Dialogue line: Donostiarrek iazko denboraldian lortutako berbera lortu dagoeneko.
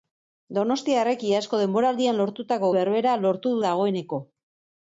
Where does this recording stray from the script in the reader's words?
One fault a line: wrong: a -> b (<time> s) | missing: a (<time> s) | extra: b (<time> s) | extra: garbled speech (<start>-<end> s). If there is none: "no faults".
no faults